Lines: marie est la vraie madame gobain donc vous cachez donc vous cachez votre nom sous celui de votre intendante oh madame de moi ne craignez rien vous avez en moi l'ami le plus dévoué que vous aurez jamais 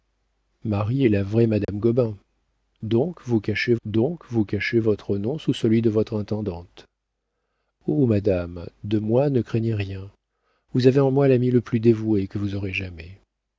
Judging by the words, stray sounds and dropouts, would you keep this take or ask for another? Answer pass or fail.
fail